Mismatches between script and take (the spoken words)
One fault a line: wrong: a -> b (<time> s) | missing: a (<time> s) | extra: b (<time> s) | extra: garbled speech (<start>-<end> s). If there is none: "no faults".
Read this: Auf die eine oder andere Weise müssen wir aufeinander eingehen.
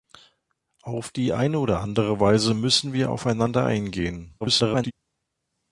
extra: garbled speech (4.4-4.9 s)